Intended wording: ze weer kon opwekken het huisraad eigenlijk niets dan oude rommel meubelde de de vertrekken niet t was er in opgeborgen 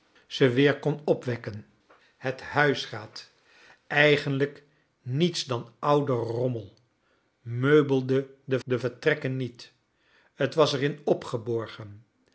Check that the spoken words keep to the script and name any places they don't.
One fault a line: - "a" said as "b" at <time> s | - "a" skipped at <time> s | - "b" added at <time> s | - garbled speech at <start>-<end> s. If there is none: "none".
none